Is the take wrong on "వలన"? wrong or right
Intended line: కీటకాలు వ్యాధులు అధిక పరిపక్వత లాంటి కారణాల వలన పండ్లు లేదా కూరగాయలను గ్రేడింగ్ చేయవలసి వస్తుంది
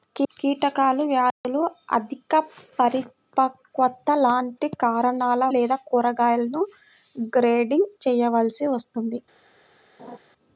wrong